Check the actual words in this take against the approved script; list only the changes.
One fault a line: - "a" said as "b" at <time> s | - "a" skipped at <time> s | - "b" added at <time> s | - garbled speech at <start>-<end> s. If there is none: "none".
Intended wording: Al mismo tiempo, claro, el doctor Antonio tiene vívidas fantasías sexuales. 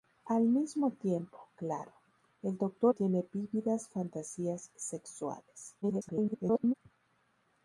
- "Antonio" skipped at 3.0 s
- garbled speech at 5.8-6.7 s